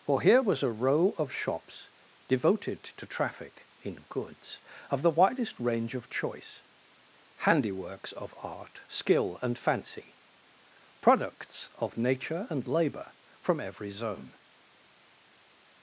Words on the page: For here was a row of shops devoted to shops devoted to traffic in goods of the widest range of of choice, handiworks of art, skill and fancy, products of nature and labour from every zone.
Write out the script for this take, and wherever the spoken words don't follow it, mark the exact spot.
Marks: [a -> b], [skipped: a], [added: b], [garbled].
For here was a row of shops devoted to [skipped: shops devoted to] traffic in goods of the widest range of [skipped: of] choice, handiworks of art, skill and fancy, products of nature and labour from every zone.